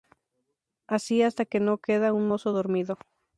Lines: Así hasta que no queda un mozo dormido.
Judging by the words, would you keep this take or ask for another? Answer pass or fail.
pass